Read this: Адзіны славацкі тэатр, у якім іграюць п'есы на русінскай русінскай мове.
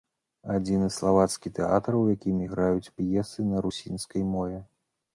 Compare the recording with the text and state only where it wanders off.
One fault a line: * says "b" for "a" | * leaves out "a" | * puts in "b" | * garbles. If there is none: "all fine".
* leaves out "русінскай"